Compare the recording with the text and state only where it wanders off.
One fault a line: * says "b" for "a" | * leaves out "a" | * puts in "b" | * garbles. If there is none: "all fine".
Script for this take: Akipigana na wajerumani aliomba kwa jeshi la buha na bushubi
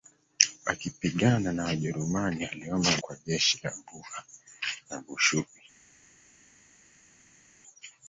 all fine